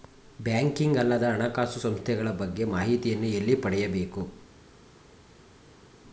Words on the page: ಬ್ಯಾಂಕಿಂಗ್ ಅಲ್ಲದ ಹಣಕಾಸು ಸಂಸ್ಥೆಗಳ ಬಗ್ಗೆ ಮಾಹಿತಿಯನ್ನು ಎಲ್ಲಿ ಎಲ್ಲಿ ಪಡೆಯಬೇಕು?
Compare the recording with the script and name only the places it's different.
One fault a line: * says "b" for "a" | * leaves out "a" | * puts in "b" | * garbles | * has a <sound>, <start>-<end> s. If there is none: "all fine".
* leaves out "ಎಲ್ಲಿ"